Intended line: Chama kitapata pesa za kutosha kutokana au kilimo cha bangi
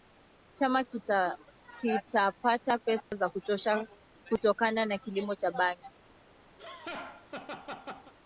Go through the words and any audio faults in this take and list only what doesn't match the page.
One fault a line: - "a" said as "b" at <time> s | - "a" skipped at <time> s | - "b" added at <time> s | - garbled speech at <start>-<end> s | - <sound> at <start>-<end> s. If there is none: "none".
- dropout at 3.0-3.1 s
- "au" said as "na" at 4.8 s
- laugh at 6.6-8.1 s